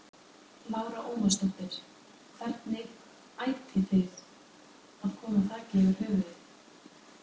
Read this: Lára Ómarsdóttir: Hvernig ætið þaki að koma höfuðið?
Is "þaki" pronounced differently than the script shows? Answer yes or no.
yes